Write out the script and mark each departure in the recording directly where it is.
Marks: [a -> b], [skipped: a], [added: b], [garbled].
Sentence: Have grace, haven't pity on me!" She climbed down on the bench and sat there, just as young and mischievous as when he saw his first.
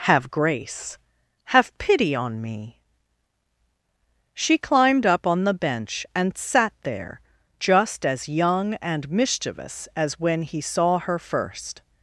Have grace, [haven't -> have] pity on me!" She climbed [down -> up] on the bench and sat there, just as young and mischievous as when he saw [his -> her] first.